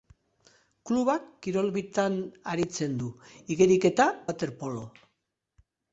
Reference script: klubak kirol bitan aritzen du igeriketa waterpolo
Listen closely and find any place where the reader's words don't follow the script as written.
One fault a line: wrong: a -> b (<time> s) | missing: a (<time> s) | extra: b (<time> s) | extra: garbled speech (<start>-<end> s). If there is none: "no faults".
no faults